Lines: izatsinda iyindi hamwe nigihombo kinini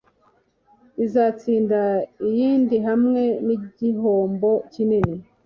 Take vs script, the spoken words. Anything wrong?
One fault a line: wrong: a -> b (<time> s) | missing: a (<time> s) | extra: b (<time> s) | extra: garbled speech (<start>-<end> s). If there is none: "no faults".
no faults